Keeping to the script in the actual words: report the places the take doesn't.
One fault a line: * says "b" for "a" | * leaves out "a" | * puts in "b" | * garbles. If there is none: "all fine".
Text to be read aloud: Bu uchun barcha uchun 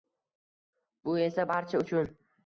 * says "esa" for "uchun"